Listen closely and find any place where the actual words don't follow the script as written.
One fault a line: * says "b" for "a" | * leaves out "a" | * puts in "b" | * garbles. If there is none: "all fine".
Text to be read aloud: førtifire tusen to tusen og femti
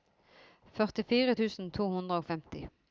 * says "hundre" for "tusen"